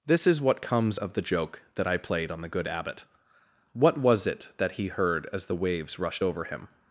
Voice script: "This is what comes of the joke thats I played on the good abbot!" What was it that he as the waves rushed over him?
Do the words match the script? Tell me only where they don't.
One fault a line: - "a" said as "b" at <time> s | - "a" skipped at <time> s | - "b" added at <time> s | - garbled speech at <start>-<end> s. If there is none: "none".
- "thats" said as "that" at 1.7 s
- "heard" added at 4.9 s